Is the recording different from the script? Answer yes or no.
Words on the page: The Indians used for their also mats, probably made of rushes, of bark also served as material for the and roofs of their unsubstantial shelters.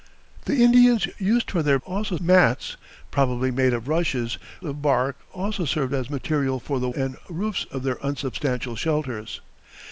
no